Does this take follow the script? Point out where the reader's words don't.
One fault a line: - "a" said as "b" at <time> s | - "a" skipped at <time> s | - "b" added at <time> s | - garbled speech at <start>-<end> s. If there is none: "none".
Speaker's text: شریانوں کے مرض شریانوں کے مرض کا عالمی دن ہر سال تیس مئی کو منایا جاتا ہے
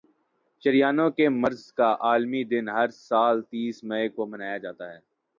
- "شریانوں کے مرض" skipped at 1.6 s